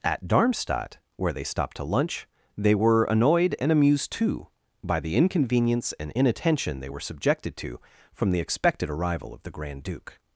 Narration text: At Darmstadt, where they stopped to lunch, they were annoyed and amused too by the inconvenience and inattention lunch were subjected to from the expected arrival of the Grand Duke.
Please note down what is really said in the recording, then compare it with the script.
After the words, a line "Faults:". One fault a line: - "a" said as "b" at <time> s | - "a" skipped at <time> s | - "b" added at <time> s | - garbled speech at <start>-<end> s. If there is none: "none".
At Darmstadt, where they stopped to lunch, they were annoyed and amused too by the inconvenience and inattention they were subjected to from the expected arrival of the Grand Duke.
Faults:
- "lunch" said as "they" at 6.8 s